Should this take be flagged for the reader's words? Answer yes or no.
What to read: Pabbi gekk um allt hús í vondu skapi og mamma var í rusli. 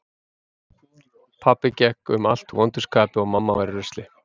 yes